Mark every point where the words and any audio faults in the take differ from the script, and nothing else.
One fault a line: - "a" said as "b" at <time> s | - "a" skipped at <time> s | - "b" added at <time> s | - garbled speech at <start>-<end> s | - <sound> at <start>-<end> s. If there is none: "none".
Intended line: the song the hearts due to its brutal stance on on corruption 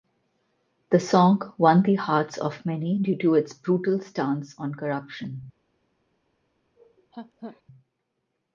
- "won" added at 1.6 s
- "of many" added at 2.4 s
- "on" skipped at 4.7 s
- laugh at 6.8-7.6 s